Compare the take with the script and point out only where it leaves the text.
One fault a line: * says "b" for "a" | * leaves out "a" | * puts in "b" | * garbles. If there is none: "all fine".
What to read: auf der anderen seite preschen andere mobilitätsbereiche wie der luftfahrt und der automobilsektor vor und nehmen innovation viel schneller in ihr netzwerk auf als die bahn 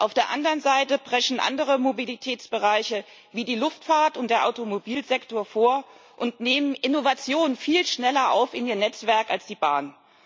* says "die" for "der"